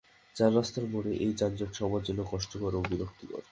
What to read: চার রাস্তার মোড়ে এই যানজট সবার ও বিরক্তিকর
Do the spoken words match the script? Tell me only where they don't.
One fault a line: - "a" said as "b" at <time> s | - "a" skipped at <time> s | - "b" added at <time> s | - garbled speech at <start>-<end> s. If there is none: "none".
- "জন্য কষ্টকর" added at 2.0 s